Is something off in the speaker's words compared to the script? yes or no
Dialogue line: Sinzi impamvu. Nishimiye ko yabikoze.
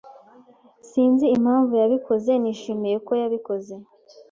yes